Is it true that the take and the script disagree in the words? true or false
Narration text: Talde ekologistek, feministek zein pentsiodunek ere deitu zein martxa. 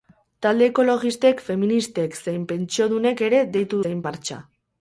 false